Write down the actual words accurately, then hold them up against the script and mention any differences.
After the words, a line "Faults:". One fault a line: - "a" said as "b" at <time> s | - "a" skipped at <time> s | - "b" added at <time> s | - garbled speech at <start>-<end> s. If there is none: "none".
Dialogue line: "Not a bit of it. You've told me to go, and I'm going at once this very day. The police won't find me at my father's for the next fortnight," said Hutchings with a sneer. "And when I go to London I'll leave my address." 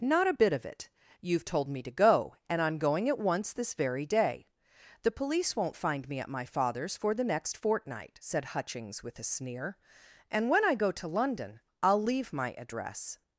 "Not a bit of it. You've told me to go, and I'm going at once this very day. The police won't find me at my father's for the next fortnight," said Hutchings with a sneer. "And when I go to London I'll leave my address."
Faults:
none